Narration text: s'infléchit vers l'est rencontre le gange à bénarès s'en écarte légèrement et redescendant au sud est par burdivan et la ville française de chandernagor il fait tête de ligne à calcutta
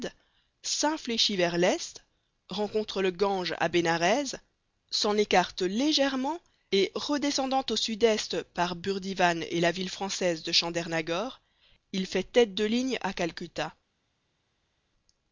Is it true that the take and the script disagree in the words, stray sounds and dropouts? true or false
false